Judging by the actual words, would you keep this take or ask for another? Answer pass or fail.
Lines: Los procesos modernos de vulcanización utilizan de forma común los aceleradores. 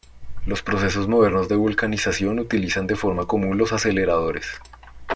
pass